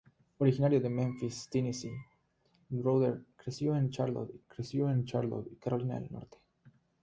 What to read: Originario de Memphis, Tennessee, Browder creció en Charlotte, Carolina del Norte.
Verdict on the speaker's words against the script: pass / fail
fail